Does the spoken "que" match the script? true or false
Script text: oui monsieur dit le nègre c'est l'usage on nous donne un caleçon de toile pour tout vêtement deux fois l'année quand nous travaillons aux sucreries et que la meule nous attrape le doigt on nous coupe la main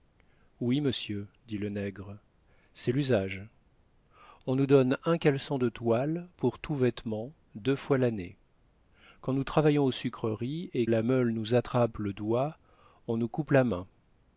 false